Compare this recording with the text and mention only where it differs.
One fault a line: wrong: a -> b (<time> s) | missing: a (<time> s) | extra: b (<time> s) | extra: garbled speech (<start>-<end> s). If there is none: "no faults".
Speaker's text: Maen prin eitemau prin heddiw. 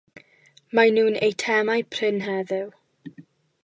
wrong: prin -> nhw'n (1.0 s)